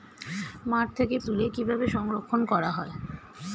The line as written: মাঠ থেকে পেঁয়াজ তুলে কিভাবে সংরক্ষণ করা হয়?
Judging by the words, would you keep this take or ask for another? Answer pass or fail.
fail